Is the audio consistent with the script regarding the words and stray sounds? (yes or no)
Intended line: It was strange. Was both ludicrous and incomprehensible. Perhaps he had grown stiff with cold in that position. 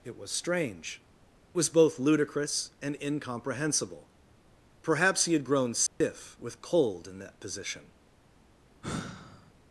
no